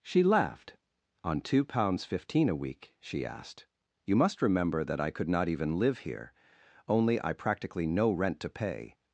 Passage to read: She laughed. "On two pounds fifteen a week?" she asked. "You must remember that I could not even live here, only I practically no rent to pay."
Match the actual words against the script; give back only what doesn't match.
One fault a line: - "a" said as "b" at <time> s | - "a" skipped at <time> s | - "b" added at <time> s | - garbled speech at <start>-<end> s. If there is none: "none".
none